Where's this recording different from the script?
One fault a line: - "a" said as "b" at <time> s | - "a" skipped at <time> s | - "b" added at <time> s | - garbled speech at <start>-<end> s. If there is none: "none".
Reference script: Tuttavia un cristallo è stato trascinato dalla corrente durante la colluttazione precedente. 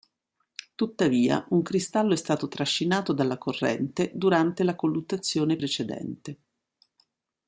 none